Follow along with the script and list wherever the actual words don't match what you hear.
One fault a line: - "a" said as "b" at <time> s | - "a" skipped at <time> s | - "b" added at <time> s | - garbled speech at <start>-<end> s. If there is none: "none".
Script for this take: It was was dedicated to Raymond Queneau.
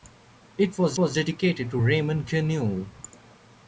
none